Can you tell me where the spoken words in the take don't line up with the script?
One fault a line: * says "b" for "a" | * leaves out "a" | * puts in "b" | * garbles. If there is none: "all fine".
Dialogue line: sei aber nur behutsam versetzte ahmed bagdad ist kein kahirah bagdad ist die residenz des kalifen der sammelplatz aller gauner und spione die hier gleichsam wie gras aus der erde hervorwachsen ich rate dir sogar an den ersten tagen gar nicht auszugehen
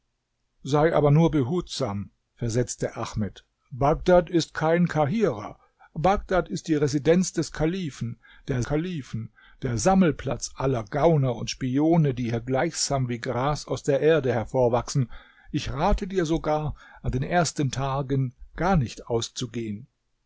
* puts in "kalifen der"